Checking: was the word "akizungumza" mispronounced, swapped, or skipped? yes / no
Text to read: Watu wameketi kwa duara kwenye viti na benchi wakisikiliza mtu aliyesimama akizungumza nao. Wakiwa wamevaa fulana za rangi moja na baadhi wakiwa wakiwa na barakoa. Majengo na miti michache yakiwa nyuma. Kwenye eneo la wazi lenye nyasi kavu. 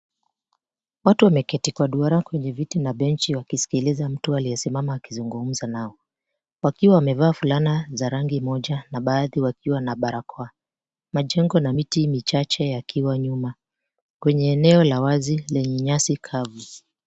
no